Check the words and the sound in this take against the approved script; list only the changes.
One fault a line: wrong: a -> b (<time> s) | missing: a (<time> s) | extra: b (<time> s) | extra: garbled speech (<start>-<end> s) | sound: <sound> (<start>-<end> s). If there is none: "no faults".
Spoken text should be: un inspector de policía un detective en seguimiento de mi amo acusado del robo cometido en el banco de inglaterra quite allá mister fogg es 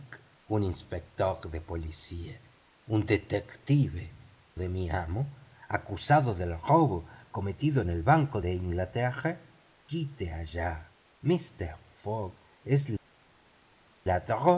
missing: en seguimiento (4.0 s)